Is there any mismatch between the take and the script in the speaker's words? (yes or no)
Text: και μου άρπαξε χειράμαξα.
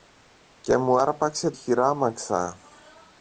no